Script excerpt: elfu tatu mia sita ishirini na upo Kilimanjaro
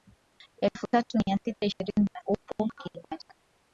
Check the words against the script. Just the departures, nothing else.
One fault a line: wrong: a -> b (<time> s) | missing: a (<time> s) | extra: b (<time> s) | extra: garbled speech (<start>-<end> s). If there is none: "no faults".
no faults